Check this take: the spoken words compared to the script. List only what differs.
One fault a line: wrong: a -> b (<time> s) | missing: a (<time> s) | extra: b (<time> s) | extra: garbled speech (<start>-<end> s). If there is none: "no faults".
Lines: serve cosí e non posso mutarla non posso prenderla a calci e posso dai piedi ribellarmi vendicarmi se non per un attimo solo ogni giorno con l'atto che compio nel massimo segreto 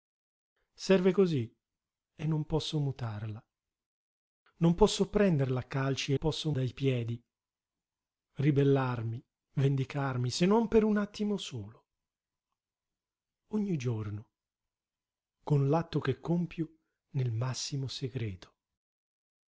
no faults